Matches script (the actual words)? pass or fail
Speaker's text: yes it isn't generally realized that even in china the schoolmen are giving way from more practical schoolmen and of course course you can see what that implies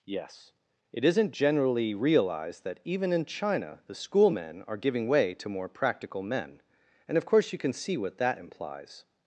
fail